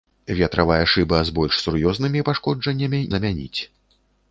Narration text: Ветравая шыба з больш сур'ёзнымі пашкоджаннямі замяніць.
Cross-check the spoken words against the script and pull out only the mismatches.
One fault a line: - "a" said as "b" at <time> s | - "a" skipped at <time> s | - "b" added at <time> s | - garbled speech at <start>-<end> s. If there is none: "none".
none